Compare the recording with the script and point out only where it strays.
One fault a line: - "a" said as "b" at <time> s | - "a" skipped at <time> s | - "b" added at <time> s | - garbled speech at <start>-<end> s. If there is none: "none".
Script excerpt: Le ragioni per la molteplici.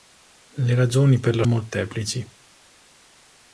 none